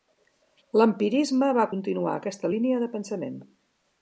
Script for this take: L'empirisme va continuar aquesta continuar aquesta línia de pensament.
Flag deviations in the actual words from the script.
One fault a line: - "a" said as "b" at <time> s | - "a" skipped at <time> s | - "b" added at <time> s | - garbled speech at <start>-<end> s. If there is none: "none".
- "continuar aquesta" skipped at 2.5 s